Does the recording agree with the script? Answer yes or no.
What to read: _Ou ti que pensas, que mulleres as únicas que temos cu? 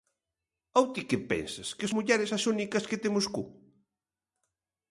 yes